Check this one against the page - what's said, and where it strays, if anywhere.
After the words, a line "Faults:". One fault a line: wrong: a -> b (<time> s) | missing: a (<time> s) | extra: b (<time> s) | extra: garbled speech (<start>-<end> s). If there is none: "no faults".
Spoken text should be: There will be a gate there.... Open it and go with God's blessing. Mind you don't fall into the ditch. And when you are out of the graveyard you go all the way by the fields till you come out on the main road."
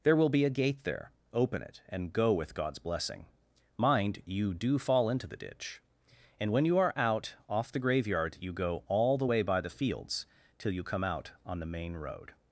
There will be a gate there.... Open it and go with God's blessing. Mind you do fall into the ditch. And when you are out off the graveyard you go all the way by the fields till you come out on the main road."
Faults:
wrong: don't -> do (4.5 s)
wrong: of -> off (7.5 s)